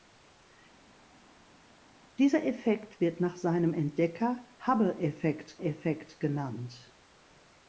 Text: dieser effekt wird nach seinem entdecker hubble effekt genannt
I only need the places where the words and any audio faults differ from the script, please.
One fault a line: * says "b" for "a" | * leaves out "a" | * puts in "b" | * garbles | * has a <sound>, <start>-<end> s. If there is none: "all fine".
* puts in "effekt"